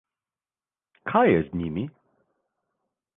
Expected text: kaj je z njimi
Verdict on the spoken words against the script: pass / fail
pass